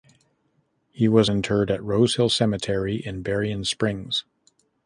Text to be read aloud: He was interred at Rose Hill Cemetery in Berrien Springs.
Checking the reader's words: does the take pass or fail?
pass